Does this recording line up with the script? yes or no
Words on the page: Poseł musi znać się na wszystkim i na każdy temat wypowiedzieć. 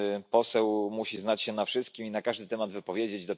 yes